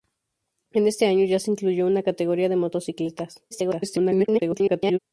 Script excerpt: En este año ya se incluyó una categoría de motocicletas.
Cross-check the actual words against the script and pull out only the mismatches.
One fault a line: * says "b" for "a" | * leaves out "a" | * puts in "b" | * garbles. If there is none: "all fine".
* garbles